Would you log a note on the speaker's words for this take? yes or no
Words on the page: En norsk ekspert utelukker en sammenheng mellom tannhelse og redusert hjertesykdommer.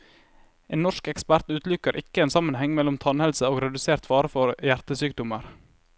yes